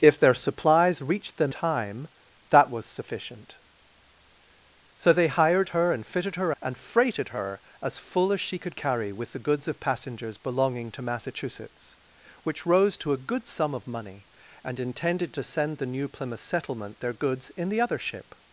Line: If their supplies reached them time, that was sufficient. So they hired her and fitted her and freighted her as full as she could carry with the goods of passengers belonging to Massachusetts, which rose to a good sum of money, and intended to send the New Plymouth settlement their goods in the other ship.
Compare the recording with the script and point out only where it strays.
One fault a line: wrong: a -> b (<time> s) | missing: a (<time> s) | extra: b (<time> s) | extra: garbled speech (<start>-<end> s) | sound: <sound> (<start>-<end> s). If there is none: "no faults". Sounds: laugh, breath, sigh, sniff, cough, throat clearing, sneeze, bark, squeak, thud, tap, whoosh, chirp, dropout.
no faults